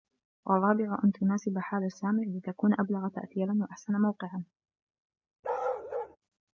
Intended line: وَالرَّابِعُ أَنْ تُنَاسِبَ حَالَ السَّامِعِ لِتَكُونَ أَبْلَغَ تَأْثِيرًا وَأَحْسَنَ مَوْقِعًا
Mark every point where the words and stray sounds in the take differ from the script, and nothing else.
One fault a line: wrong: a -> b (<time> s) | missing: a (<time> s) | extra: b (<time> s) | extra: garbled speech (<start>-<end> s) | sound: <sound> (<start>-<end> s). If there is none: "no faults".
sound: bark (5.4-6.2 s)